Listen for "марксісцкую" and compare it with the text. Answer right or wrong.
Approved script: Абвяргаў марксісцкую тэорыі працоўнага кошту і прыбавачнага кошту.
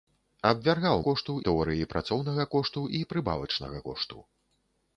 wrong